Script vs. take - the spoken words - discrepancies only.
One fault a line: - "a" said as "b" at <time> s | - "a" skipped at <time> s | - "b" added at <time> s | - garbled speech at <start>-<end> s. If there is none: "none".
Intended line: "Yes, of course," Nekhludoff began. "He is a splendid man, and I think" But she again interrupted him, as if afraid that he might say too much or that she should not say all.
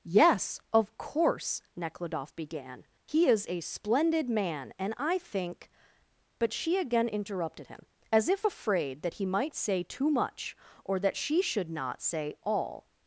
none